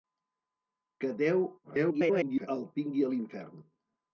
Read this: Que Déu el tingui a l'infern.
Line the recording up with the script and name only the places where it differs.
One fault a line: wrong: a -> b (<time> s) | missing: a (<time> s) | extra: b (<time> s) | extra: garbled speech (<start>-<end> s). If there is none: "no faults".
extra: garbled speech (1.6-2.5 s)